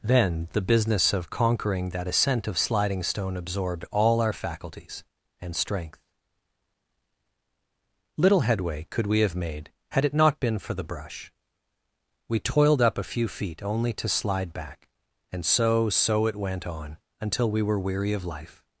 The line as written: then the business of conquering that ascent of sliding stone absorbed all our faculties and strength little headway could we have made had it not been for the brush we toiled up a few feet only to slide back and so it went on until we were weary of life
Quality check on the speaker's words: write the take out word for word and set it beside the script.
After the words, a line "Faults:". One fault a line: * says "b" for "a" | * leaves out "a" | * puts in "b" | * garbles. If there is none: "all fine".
then the business of conquering that ascent of sliding stone absorbed all our faculties and strength little headway could we have made had it not been for the brush we toiled up a few feet only to slide back and so so it went on until we were weary of life
Faults:
* puts in "so"